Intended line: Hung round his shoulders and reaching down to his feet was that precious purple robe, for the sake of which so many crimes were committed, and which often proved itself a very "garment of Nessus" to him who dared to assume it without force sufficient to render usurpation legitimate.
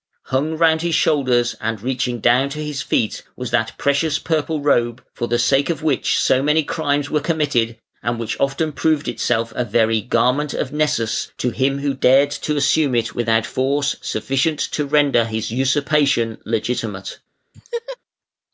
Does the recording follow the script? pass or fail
fail